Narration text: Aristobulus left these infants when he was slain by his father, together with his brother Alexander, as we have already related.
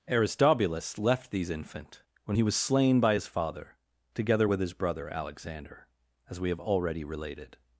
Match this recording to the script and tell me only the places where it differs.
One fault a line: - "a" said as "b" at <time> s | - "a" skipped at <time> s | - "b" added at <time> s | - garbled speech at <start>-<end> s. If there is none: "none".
- "infants" said as "infant" at 1.5 s